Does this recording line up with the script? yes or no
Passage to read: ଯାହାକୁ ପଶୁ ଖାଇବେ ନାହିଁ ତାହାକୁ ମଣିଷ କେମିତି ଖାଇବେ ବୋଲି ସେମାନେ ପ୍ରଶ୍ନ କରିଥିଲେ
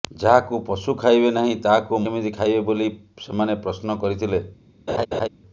no